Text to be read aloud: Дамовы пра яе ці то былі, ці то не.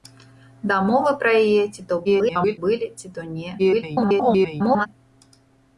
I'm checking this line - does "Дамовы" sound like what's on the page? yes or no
yes